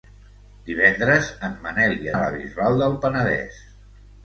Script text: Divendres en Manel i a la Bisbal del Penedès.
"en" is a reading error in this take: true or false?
false